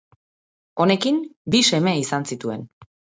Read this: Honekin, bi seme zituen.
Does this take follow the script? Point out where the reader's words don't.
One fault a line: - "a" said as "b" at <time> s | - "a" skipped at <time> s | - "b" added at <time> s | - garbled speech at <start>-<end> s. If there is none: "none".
- "izan" added at 2.0 s